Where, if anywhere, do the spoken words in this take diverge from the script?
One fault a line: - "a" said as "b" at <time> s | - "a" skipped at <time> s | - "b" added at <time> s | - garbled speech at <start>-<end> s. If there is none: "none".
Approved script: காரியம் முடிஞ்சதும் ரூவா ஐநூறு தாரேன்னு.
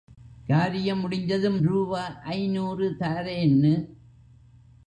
none